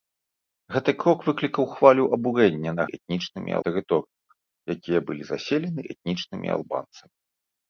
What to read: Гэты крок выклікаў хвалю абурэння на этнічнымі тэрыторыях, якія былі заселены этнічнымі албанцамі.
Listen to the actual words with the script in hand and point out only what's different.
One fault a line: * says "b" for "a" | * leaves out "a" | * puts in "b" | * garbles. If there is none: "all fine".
all fine